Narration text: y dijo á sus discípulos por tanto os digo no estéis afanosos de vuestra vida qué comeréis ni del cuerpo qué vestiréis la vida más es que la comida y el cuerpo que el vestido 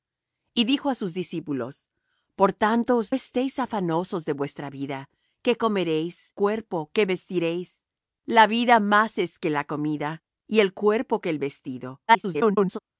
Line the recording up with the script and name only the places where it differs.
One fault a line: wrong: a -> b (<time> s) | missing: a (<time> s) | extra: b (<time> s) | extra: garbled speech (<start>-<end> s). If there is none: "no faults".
missing: digo no (3.1 s)
missing: ni del (6.3 s)
extra: garbled speech (12.1-12.8 s)